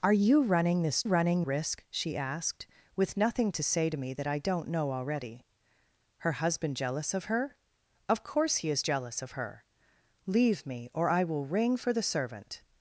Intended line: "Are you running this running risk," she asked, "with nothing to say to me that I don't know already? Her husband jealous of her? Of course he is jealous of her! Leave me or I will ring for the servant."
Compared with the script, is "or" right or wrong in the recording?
right